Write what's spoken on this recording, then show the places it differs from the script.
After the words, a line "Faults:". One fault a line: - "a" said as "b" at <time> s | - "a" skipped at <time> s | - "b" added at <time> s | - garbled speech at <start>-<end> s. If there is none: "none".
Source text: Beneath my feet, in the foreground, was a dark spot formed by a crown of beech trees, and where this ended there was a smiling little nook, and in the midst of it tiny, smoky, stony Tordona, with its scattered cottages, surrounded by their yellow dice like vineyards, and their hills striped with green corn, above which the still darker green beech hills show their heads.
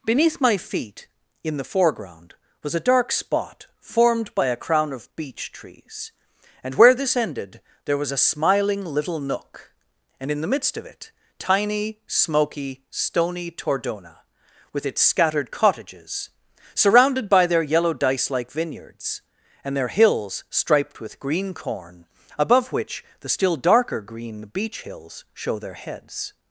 Beneath my feet, in the foreground, was a dark spot formed by a crown of beech trees, and where this ended there was a smiling little nook, and in the midst of it tiny, smoky, stony Tordona, with its scattered cottages, surrounded by their yellow dice like vineyards, and their hills striped with green corn, above which the still darker green beech hills show their heads.
Faults:
none